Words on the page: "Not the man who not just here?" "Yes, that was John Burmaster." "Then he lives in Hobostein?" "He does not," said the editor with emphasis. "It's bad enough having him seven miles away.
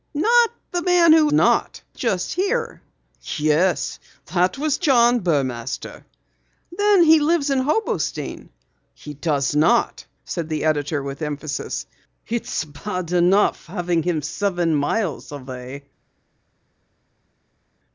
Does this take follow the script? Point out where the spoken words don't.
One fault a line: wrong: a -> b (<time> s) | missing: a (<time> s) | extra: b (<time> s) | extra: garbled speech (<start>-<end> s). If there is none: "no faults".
no faults